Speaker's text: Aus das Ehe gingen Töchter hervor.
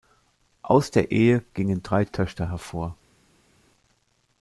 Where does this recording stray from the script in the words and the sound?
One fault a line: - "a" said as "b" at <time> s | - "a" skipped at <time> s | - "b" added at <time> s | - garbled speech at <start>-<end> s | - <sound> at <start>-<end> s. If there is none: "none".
- "das" said as "der" at 0.9 s
- "drei" added at 1.8 s